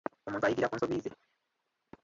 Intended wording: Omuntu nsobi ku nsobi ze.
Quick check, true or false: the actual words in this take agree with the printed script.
false